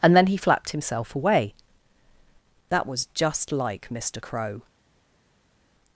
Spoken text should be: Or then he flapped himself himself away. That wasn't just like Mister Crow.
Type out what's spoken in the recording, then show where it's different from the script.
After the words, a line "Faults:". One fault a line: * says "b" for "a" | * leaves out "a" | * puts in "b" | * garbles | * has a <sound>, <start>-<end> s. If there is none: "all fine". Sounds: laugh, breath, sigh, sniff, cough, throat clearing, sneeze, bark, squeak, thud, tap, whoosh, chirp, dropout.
And then he flapped himself away. That was just like Mister Crow.
Faults:
* says "And" for "Or"
* leaves out "himself"
* says "was" for "wasn't"